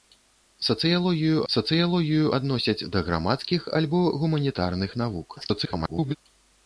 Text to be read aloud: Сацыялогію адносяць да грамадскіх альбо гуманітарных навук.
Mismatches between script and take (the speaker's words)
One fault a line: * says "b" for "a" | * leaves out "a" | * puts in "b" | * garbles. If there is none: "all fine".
* puts in "сацыялогію"
* garbles